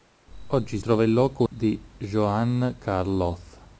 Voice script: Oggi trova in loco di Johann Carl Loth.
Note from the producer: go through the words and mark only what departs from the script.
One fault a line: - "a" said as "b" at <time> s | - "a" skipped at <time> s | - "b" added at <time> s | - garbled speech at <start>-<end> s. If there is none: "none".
none